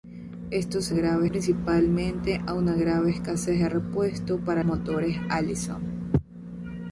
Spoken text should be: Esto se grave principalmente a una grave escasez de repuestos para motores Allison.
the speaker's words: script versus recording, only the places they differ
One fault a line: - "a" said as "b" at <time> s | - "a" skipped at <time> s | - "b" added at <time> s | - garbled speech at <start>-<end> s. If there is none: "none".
none